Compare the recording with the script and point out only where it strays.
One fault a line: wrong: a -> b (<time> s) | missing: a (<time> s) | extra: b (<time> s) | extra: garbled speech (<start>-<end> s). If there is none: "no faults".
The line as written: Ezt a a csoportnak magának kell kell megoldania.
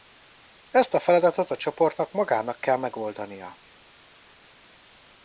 extra: feladatot (1.0 s)
missing: kell (2.8 s)